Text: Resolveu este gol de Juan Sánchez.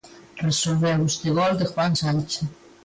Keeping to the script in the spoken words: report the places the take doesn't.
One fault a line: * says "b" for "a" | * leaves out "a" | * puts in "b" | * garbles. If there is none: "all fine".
all fine